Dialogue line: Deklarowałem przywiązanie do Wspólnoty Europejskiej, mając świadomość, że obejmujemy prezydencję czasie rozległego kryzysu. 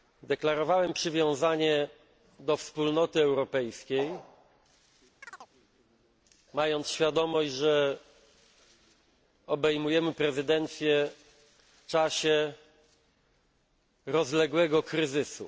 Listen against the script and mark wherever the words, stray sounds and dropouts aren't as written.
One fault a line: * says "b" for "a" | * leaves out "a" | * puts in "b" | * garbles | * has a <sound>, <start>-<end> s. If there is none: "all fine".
* has a chirp, 5.2-5.5 s